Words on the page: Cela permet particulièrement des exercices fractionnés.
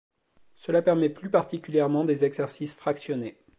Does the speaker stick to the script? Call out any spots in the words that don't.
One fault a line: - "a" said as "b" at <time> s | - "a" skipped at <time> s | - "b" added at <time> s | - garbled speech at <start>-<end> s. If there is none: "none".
- "plus" added at 1.1 s